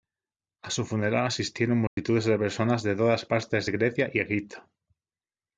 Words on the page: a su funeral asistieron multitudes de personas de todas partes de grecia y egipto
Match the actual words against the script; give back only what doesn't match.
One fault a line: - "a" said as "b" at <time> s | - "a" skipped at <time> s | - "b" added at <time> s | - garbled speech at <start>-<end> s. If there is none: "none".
none